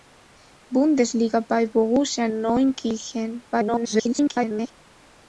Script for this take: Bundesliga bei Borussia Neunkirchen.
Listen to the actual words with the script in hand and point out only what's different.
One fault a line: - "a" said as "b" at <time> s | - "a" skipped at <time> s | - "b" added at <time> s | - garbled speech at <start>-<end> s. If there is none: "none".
- garbled speech at 3.5-4.7 s